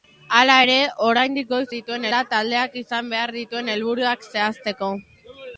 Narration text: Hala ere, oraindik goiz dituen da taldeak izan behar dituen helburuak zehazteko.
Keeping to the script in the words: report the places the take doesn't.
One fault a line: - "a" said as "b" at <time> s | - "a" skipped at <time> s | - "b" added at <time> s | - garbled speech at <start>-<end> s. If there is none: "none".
none